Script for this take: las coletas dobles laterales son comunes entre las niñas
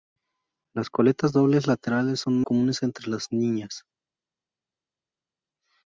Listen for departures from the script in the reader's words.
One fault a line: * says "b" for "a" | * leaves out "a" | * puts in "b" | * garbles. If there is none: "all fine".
all fine